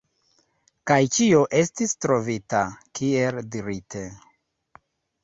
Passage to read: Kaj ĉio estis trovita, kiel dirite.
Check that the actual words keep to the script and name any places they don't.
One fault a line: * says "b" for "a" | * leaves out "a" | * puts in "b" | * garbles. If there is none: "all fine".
all fine